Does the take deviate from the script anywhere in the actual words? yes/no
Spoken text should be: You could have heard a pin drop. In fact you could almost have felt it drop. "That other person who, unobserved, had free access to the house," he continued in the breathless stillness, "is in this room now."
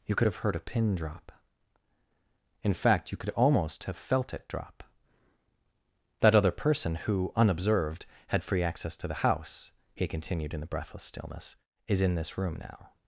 no